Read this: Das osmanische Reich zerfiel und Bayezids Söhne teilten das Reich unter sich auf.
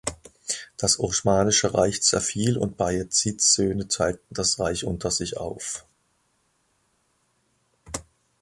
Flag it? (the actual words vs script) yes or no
no